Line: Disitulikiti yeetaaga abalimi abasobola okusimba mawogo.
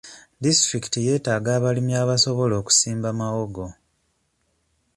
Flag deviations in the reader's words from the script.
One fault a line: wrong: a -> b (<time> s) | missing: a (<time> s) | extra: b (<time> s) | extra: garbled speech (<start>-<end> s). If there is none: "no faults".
no faults